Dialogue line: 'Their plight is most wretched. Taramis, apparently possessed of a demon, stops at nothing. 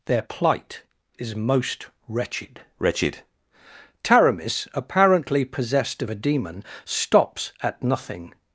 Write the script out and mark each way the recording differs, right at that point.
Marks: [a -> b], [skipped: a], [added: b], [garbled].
'Their plight is most wretched. [added: wretched] Taramis, apparently possessed of a demon, stops at nothing.